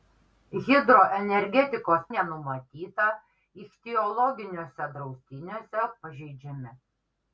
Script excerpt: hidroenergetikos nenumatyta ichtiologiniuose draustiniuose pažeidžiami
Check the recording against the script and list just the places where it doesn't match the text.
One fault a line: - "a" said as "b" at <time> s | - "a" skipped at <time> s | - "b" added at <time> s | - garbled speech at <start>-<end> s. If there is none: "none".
none